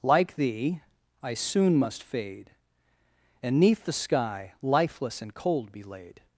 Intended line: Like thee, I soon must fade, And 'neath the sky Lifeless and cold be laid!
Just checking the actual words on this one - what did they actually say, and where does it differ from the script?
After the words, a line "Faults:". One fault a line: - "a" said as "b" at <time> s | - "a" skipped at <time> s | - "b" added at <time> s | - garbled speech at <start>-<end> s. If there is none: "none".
Like thee, I soon must fade, And 'neath the sky Lifeless and cold be laid!
Faults:
none